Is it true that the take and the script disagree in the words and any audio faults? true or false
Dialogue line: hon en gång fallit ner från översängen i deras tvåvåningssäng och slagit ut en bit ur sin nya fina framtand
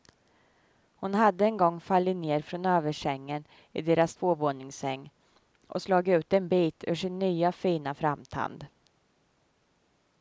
true